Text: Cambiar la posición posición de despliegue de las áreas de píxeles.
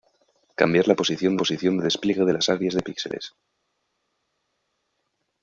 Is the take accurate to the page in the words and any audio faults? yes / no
yes